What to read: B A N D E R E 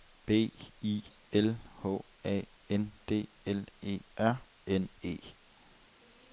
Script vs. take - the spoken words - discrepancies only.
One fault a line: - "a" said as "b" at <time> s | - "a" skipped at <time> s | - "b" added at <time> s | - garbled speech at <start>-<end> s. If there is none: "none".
- "I L H" added at 0.8 s
- "L" added at 3.5 s
- "N" added at 4.7 s